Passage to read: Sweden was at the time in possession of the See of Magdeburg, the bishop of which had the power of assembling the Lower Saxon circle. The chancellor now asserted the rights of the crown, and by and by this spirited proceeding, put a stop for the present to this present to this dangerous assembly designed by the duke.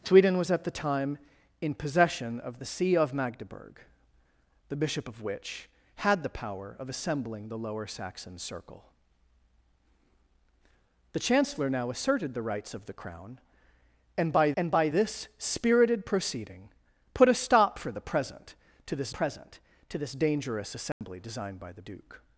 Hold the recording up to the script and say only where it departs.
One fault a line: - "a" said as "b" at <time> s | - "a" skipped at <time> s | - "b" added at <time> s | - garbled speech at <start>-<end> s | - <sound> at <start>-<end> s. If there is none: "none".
- dropout at 20.9-21.0 s